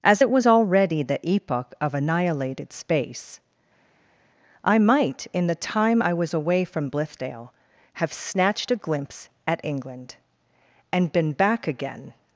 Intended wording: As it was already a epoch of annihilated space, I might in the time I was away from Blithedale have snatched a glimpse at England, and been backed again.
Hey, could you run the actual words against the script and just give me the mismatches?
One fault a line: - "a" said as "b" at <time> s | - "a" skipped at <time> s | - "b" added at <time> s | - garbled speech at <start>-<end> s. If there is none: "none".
- "a" said as "the" at 1.0 s
- "backed" said as "back" at 11.3 s